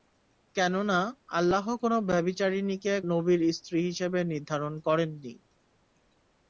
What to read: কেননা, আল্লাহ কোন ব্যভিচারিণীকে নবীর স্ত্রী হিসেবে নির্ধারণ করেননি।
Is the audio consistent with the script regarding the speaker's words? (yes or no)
yes